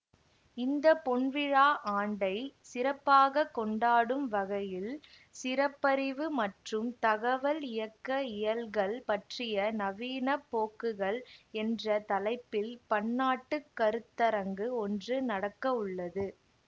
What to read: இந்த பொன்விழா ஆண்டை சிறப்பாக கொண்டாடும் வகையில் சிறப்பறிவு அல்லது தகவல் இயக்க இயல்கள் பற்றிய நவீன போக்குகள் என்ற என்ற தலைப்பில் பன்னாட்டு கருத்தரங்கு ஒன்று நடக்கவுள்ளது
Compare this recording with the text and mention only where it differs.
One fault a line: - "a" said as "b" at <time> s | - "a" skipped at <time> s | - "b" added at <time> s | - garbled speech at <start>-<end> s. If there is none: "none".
- "அல்லது" said as "மற்றும்" at 6.4 s
- "என்ற" skipped at 11.9 s